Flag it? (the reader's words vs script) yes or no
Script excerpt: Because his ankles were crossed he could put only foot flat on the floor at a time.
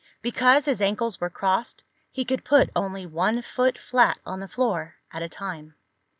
yes